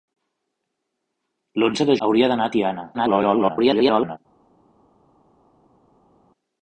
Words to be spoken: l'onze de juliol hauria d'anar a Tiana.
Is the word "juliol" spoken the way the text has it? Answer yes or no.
no